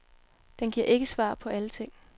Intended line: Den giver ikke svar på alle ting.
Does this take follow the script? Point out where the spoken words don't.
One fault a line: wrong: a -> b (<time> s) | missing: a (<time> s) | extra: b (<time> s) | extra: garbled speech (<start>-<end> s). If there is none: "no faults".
no faults